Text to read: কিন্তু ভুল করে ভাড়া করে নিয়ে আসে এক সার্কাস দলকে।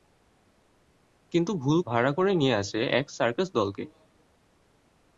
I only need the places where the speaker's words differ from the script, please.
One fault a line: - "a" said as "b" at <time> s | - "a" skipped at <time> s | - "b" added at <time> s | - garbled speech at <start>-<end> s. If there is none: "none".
- "করে" skipped at 1.8 s